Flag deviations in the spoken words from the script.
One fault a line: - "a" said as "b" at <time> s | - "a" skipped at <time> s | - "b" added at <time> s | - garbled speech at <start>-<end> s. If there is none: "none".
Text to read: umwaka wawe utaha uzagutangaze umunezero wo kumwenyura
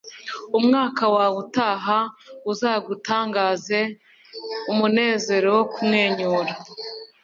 none